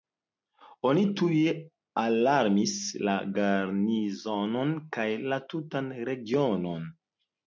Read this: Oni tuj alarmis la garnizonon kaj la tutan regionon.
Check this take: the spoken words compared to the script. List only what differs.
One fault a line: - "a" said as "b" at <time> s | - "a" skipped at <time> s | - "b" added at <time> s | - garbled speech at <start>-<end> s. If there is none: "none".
none